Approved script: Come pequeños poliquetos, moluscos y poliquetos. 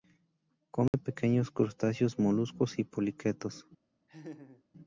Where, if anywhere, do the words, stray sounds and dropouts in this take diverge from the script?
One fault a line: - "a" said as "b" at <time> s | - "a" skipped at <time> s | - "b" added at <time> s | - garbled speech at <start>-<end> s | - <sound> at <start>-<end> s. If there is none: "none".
- dropout at 0.9-0.9 s
- "poliquetos" said as "crustáceos" at 1.5 s
- laugh at 4.1-4.6 s